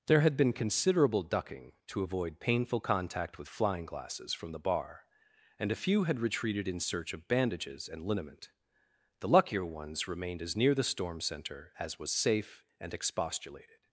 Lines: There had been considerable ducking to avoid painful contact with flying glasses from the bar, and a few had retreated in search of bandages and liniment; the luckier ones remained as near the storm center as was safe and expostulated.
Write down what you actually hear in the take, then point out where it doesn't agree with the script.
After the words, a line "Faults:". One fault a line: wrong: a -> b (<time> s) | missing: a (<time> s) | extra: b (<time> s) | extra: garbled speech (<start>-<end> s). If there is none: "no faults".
There had been considerable ducking to avoid painful contact with flying glasses from the bar, and a few had retreated in search of bandages and liniment; the luckier ones remained as near the storm center as was safe and expostulated.
Faults:
no faults